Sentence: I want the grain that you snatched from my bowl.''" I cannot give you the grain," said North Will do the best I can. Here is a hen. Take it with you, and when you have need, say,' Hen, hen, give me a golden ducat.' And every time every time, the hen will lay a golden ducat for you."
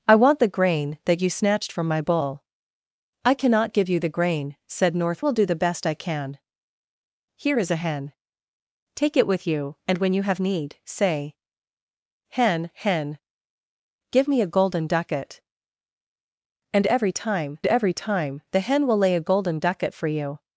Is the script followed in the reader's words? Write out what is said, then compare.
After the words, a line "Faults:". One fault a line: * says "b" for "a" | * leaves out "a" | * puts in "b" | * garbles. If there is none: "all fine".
I want the grain that you snatched from my bowl.''" I cannot give you the grain," said North Will do the best I can. Here is a hen. Take it with you, and when you have need, say,' Hen, hen, give me a golden ducat.' And every time every time, the hen will lay a golden ducat for you."
Faults:
all fine